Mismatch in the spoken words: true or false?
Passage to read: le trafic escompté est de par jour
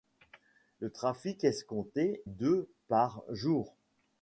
true